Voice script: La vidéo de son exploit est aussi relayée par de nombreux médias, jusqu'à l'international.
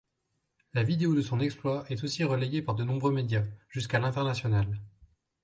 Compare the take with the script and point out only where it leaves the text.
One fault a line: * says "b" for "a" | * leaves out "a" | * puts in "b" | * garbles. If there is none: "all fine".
all fine